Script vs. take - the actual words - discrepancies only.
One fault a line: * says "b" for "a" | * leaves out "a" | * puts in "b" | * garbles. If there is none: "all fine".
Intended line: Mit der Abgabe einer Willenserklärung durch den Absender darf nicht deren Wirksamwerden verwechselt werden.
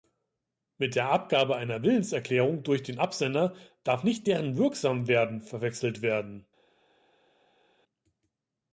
all fine